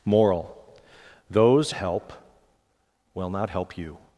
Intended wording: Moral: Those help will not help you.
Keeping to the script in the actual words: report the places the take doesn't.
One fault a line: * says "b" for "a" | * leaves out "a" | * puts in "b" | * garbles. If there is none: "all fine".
all fine